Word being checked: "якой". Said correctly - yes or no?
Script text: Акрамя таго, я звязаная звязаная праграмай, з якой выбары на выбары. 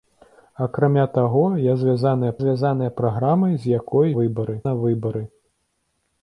yes